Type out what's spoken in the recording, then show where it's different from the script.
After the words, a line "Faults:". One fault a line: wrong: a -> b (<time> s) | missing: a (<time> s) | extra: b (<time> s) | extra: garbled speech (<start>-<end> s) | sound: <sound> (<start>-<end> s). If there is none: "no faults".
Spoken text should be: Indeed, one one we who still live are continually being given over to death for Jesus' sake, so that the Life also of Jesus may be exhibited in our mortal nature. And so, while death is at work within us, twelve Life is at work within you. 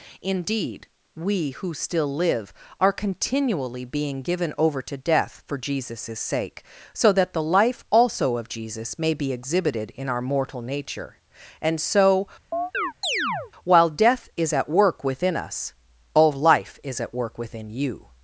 Indeed, we who still live are continually being given over to death for Jesus' sake, so that the Life also of Jesus may be exhibited in our mortal nature. And so, while death is at work within us, all Life is at work within you.
Faults:
missing: one one (0.9 s)
sound: chirp (12.5-13.5 s)
wrong: twelve -> all (16.1 s)